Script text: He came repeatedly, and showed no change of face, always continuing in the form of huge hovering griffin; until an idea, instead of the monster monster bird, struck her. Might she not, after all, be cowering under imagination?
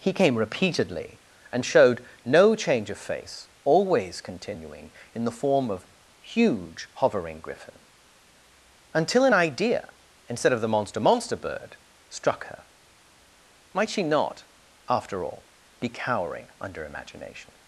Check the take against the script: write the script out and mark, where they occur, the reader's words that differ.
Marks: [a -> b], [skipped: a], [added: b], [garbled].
He came repeatedly, and showed no change of face, always continuing in the form of huge hovering griffin; until an idea, instead of the monster monster bird, struck her. Might she not, after all, be cowering under imagination?